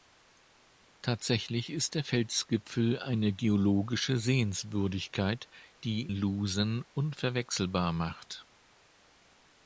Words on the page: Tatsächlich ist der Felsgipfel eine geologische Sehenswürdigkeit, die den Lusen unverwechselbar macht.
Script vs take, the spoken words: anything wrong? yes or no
yes